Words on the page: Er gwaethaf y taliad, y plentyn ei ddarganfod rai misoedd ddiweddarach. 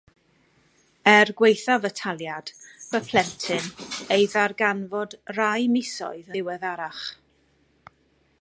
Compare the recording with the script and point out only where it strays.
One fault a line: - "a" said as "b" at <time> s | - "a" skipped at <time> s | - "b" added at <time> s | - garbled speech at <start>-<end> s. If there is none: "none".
none